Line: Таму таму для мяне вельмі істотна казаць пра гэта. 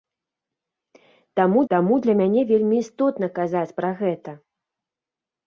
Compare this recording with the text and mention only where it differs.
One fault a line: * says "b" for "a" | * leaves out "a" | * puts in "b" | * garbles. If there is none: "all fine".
all fine